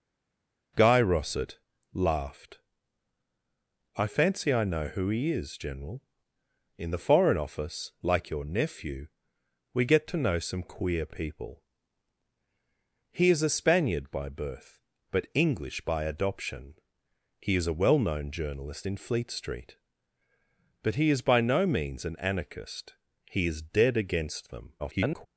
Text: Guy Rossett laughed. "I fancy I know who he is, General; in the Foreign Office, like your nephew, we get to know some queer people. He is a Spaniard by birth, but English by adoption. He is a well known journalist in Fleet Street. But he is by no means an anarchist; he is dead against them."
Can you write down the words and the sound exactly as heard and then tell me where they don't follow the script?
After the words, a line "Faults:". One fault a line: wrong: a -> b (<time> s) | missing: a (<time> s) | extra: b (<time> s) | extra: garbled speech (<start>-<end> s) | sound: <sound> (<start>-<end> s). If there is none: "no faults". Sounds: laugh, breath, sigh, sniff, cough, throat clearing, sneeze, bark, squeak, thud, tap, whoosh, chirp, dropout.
Guy Rossett laughed. "I fancy I know who he is, General; in the Foreign Office, like your nephew, we get to know some queer people. He is a Spaniard by birth, but English by adoption. He is a well known journalist in Fleet Street. But he is by no means an anarchist; he is dead against them." [garbled]
Faults:
extra: garbled speech (24.8-25.3 s)